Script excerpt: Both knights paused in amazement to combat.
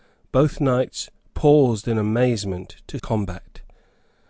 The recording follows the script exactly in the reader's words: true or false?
true